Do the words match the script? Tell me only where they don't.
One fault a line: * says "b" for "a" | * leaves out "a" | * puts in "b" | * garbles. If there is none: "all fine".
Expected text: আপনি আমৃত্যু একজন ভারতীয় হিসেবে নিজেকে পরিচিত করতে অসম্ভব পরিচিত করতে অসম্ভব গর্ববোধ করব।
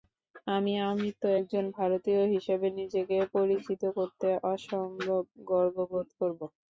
* says "আমি" for "আপনি"
* leaves out "পরিচিত করতে অসম্ভব"